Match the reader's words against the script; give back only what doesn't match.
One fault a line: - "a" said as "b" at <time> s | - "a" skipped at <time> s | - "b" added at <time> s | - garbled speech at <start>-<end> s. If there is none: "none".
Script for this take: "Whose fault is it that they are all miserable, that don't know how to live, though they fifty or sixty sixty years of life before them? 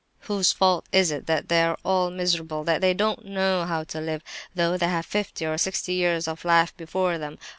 - "they" added at 2.8 s
- "have" added at 4.9 s
- "sixty" skipped at 5.9 s